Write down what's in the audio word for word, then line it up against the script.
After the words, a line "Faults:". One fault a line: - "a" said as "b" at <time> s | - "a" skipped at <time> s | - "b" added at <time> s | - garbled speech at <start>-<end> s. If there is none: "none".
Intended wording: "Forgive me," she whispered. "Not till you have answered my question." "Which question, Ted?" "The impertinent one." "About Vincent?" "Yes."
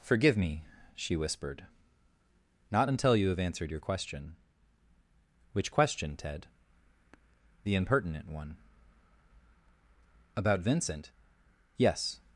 "Forgive me," she whispered. "Not until you have answered your question." "Which question, Ted?" "The impertinent one." "About Vincent?" "Yes."
Faults:
- "till" said as "until" at 2.9 s
- "my" said as "your" at 3.7 s